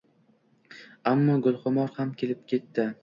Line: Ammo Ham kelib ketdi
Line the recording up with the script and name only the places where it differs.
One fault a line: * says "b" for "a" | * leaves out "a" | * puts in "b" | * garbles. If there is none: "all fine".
* puts in "Gulxumor"